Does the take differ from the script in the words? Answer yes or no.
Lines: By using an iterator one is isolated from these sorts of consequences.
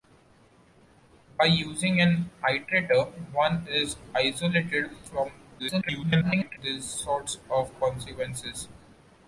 yes